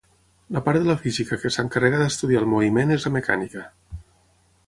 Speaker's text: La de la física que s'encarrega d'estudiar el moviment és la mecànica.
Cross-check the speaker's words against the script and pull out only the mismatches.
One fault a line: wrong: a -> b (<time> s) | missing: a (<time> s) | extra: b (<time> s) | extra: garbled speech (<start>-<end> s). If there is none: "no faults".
extra: part (0.7 s)